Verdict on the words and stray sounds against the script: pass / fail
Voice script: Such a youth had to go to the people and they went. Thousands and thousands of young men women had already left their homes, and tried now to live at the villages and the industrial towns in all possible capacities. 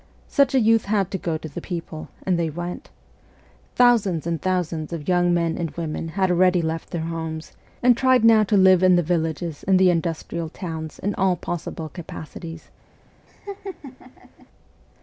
fail